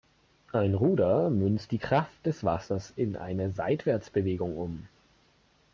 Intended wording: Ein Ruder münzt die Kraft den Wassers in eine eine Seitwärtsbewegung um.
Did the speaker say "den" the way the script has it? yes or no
no